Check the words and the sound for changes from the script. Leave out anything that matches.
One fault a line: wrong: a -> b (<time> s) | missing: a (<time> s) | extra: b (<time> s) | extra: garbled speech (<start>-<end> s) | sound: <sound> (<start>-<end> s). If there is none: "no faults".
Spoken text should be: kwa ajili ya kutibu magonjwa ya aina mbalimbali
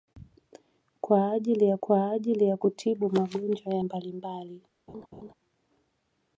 extra: kwa ajili ya (1.8 s)
missing: aina (3.8 s)
sound: laugh (4.9-5.3 s)